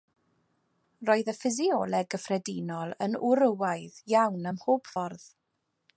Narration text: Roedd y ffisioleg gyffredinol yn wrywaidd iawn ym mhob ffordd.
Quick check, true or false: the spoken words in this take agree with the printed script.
true